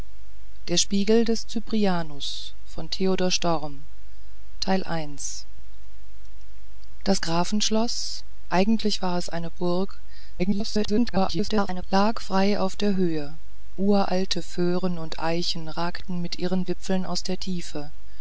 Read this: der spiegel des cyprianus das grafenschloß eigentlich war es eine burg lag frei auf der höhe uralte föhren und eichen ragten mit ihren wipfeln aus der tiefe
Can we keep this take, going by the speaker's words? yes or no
no